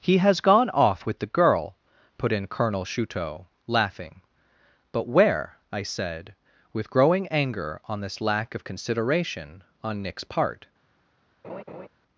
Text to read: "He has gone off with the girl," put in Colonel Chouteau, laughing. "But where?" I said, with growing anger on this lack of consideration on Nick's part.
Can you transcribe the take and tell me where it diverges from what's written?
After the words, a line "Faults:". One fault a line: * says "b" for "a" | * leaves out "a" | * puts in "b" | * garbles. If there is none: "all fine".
"He has gone off with the girl," put in Colonel Chouteau, laughing. "But where?" I said, with growing anger on this lack of consideration on Nick's part.
Faults:
all fine